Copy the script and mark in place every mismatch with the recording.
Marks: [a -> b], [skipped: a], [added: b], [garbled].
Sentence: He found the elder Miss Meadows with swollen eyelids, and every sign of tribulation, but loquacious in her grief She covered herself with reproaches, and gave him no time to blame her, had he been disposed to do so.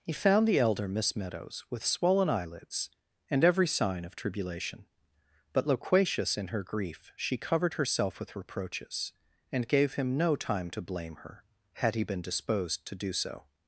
He found the elder Miss Meadows with swollen eyelids, and every sign of tribulation, but loquacious in her grief She covered herself with reproaches, and gave him no time to blame her, had he been disposed to do so.